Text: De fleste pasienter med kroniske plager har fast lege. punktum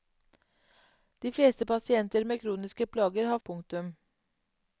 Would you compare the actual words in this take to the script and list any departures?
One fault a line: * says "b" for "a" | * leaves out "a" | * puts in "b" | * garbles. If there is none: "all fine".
* leaves out "fast lege"